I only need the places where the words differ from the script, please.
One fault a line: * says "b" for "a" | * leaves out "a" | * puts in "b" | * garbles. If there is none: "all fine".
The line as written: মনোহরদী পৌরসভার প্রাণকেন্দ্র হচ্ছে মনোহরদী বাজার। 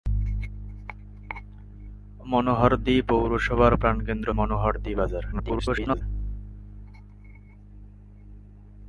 * leaves out "হচ্ছে"
* garbles